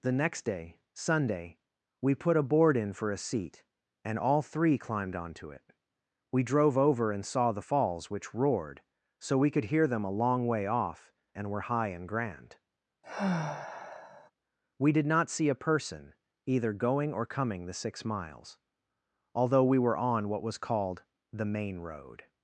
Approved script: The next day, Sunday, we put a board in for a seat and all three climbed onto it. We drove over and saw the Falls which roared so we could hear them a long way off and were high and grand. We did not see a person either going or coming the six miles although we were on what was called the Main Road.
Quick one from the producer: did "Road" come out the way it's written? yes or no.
yes